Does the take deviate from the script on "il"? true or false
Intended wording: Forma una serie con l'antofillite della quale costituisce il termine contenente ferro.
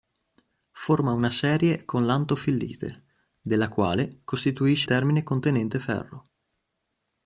true